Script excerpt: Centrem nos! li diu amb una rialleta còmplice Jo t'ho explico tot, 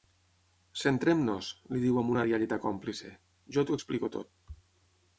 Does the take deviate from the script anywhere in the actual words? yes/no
no